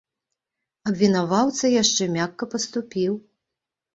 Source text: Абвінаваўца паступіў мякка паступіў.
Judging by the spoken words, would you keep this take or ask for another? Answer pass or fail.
fail